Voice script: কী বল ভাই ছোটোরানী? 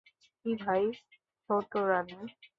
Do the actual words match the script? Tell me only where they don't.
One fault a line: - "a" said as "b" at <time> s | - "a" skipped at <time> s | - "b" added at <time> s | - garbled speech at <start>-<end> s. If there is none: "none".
- "বল" skipped at 0.5 s